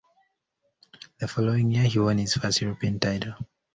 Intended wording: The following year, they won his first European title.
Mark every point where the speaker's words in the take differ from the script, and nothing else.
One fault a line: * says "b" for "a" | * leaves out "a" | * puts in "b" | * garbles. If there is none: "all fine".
* says "he" for "they"